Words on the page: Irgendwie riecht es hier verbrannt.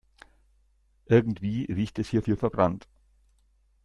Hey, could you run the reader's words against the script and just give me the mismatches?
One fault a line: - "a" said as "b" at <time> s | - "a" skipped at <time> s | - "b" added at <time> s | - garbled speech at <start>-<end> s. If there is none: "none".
- "hier" added at 2.2 s